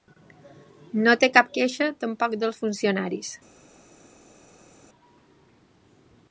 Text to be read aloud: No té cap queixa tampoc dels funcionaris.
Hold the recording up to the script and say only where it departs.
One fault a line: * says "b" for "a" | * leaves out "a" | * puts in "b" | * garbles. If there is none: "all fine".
all fine